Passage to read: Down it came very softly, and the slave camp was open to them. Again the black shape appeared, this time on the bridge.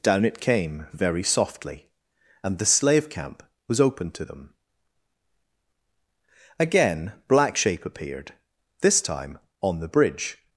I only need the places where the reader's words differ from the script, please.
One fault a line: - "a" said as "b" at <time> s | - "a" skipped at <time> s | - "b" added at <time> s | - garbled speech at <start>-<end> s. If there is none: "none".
- "the" skipped at 7.1 s